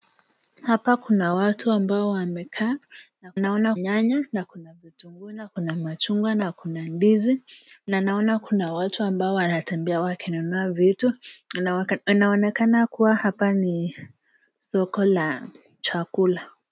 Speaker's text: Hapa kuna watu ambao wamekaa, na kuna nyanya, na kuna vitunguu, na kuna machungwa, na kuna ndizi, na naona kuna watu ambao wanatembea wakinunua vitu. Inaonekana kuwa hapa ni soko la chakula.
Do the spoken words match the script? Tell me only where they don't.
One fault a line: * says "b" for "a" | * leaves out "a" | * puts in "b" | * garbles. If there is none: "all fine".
* says "naona" for "kuna"